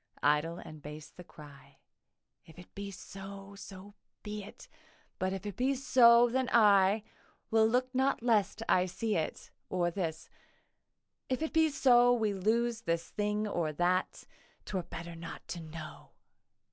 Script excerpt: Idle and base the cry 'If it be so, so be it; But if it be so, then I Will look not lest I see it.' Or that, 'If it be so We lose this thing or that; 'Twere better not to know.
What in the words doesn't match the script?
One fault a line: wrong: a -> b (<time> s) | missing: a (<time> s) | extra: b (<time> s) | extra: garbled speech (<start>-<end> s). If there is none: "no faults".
wrong: that -> this (9.9 s)